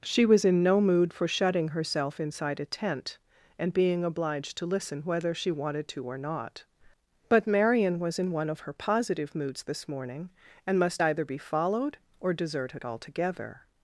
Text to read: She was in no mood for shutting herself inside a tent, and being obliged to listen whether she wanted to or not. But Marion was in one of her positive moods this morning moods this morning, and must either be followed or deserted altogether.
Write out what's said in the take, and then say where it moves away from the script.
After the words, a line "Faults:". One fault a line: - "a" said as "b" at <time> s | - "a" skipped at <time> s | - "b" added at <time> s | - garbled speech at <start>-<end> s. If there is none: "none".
She was in no mood for shutting herself inside a tent, and being obliged to listen whether she wanted to or not. But Marion was in one of her positive moods this morning, and must either be followed or deserted altogether.
Faults:
- "moods this morning" skipped at 10.3 s